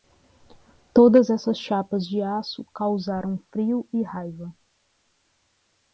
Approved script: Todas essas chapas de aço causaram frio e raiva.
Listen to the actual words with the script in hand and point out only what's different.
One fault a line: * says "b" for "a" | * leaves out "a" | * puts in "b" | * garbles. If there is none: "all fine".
all fine